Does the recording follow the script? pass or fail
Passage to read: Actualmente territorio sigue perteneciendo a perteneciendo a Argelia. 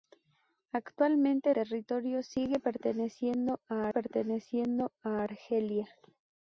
pass